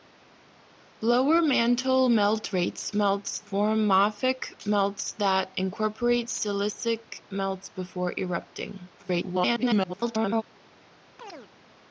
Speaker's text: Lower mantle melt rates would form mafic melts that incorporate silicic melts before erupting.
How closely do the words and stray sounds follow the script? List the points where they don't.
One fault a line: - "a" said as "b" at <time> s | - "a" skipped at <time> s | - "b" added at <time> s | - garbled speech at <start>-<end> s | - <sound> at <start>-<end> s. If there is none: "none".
- "would" said as "melts" at 2.9 s
- garbled speech at 9.0-10.4 s
- chirp at 11.2-11.5 s